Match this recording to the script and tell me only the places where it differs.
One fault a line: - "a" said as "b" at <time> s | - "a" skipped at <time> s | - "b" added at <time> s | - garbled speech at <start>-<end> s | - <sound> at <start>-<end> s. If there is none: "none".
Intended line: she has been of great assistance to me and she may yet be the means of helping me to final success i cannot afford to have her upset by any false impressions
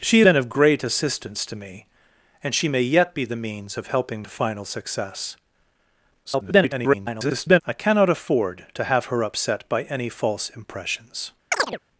- "has" skipped at 0.2 s
- "me" skipped at 4.2 s
- garbled speech at 6.2-7.6 s
- chirp at 11.5-11.8 s